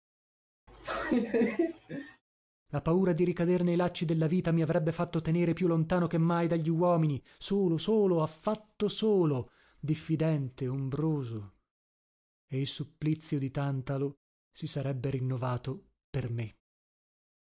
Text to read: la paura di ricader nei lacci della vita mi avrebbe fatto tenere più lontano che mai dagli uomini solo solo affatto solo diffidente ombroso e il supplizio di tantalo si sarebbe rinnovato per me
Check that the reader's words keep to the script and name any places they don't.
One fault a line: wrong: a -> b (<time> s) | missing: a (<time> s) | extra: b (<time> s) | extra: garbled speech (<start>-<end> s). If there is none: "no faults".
no faults